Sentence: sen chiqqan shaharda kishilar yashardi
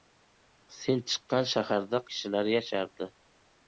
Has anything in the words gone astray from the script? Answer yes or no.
no